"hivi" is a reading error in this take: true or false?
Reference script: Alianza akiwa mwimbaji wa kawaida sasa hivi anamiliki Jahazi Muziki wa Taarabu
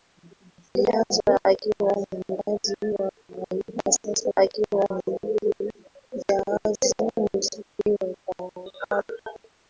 true